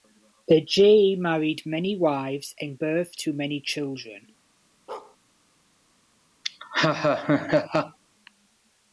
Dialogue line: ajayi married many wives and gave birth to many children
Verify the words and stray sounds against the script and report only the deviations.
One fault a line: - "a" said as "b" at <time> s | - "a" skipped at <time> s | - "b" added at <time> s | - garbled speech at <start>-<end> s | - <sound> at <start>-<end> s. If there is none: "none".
- "gave" skipped at 2.8 s
- bark at 4.9-5.2 s
- laugh at 6.4-8.0 s